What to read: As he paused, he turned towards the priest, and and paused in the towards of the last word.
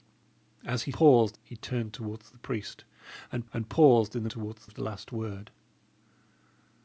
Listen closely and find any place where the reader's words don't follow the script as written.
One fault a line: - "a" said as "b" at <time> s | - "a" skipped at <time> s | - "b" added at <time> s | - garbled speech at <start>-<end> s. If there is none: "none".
none